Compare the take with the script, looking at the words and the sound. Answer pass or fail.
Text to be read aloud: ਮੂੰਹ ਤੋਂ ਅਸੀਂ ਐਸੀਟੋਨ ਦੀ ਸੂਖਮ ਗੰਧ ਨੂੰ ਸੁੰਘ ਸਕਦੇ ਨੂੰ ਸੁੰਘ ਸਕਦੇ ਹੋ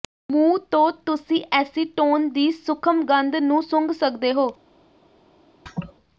fail